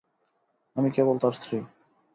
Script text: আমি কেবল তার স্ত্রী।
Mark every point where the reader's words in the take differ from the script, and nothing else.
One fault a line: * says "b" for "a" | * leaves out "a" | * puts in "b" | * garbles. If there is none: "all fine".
all fine